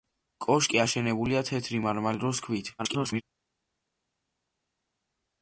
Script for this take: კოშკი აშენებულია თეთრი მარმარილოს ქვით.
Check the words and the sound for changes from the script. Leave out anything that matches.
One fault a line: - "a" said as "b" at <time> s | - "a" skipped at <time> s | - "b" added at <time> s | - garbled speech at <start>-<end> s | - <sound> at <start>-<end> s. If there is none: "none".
- garbled speech at 2.8-3.2 s